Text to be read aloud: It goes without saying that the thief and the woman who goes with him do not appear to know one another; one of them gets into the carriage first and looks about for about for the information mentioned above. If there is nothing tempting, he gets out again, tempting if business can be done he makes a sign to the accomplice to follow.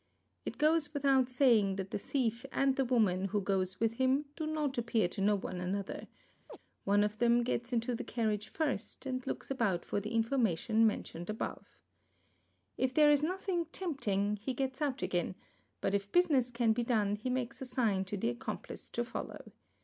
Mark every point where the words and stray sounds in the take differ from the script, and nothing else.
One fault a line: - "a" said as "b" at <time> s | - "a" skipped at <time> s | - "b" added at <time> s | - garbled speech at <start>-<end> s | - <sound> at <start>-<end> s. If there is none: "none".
- chirp at 6.5-6.6 s
- "about for" skipped at 10.0 s
- "tempting" said as "but" at 15.8 s